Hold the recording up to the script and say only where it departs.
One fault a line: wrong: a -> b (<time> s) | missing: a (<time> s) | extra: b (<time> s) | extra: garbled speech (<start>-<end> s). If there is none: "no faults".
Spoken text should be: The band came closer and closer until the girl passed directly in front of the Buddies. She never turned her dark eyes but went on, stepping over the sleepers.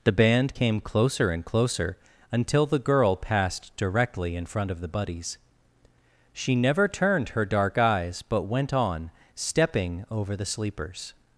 no faults